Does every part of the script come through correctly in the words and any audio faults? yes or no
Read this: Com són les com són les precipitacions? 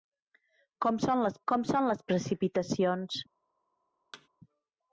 no